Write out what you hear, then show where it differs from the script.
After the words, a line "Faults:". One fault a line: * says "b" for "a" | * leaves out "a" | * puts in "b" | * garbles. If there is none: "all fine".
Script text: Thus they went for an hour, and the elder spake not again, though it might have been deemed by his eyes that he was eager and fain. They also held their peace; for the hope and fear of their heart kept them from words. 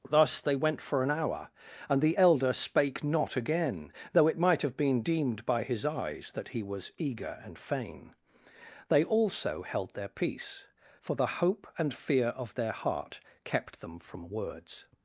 Thus they went for an hour, and the elder spake not again, though it might have been deemed by his eyes that he was eager and fain. They also held their peace; for the hope and fear of their heart kept them from words.
Faults:
all fine